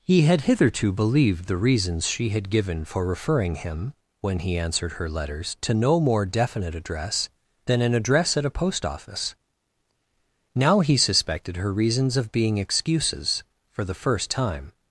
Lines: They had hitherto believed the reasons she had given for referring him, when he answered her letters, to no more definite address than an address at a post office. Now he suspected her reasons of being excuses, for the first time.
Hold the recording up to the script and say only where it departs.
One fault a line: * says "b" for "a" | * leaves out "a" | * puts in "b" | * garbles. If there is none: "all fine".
* says "He" for "They"